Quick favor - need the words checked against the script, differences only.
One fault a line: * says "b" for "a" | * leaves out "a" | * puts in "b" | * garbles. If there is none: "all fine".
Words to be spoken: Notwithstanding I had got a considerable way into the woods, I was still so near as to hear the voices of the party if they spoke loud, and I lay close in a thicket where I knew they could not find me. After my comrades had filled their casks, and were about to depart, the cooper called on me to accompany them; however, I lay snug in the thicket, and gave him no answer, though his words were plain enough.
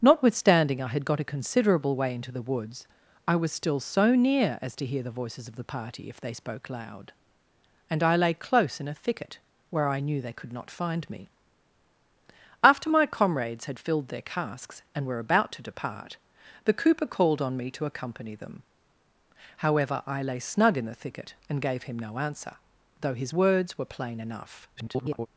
* garbles